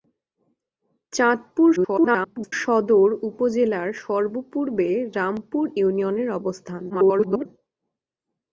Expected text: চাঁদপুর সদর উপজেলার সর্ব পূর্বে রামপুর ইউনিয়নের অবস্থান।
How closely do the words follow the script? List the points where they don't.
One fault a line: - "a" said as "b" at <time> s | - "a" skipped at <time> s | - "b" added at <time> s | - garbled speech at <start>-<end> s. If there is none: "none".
- garbled speech at 1.8-2.5 s
- garbled speech at 6.9-7.5 s